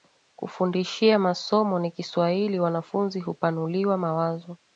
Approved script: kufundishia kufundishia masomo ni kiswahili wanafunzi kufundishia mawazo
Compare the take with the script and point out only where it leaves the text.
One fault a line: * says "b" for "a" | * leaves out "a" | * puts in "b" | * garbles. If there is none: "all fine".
* leaves out "kufundishia"
* says "hupanuliwa" for "kufundishia"